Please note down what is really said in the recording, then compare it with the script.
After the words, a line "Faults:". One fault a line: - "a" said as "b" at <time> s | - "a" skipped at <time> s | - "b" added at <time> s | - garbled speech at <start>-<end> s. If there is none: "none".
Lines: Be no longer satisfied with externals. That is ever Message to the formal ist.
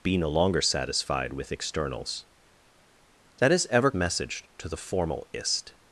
Be no longer satisfied with externals. That is ever Message to the formal ist.
Faults:
none